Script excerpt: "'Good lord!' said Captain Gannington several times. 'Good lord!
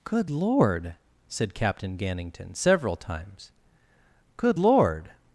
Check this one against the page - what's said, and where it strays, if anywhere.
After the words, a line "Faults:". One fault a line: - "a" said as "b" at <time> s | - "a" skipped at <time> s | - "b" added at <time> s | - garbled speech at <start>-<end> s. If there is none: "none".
"'Good lord!' said Captain Gannington several times. 'Good lord!
Faults:
none